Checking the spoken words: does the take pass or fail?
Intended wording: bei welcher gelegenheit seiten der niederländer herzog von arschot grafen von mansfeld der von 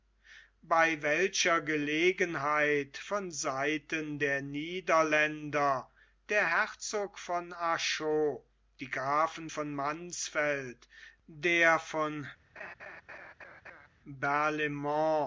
fail